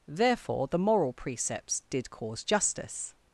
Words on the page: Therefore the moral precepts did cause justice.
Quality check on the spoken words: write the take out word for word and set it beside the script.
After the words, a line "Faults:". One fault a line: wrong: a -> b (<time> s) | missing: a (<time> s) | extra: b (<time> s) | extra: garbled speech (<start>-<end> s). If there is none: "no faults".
Therefore the moral precepts did cause justice.
Faults:
no faults